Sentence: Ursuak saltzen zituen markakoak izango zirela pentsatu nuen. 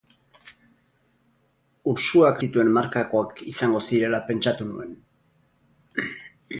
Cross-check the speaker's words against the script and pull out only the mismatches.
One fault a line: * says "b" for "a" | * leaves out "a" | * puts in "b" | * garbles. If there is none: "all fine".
* leaves out "saltzen"